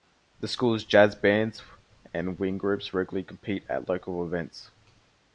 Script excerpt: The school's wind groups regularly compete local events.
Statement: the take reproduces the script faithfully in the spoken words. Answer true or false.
false